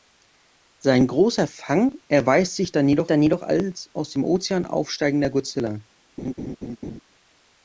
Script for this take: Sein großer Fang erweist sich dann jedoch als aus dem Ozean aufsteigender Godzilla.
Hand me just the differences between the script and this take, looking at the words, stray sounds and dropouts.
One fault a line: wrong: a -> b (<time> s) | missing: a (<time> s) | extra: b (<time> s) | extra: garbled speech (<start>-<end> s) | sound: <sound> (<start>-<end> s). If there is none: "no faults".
extra: dann jedoch (3.1 s)
sound: laugh (6.2-7.0 s)